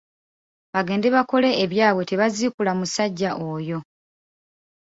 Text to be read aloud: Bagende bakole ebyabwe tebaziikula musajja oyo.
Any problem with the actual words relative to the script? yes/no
no